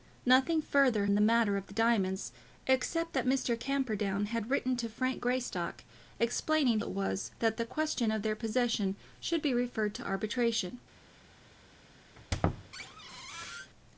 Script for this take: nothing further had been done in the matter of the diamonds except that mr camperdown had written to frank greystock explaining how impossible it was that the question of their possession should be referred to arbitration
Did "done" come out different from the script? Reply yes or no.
yes